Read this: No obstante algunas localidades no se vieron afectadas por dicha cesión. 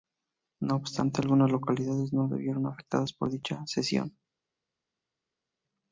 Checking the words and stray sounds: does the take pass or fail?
pass